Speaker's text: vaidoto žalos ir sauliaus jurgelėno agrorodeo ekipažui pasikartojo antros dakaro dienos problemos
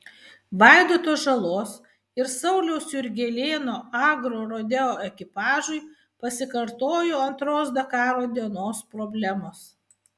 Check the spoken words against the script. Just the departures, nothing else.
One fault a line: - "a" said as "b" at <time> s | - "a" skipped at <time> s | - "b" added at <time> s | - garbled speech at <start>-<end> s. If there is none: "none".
none